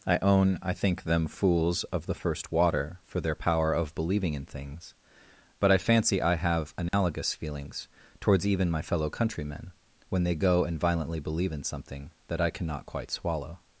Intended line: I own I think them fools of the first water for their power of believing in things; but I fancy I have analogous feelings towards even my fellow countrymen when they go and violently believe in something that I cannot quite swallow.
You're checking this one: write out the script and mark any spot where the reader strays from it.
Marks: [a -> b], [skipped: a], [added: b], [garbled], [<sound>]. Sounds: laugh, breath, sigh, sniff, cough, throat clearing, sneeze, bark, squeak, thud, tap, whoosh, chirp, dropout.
I own I think them fools of the first water for their power of believing in things; but I fancy I have analogous [dropout] feelings towards even my fellow countrymen when they go and violently believe in something that I cannot quite swallow.